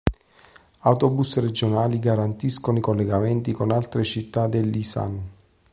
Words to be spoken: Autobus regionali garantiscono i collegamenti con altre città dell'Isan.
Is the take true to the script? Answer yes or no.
yes